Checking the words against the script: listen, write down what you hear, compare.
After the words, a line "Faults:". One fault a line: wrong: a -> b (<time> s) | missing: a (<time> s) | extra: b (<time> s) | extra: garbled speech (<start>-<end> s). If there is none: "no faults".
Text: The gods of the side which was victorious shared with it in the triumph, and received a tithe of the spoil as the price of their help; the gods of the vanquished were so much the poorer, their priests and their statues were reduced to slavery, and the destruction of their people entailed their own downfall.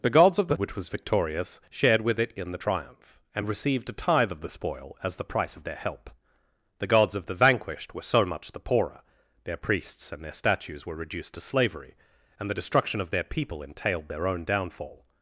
The gods of the which was victorious shared with it in the triumph, and received a tithe of the spoil as the price of their help; the gods of the vanquished were so much the poorer, their priests and their statues were reduced to slavery, and the destruction of their people entailed their own downfall.
Faults:
missing: side (0.6 s)